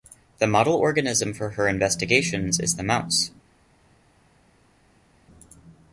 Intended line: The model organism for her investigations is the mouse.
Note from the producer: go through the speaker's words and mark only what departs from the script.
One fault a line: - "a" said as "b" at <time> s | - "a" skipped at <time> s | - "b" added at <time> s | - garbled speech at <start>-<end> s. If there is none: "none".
none